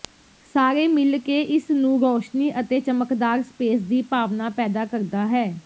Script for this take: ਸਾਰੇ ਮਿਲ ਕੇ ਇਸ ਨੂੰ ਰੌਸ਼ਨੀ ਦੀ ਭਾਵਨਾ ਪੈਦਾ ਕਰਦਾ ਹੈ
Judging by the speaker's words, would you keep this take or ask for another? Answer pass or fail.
fail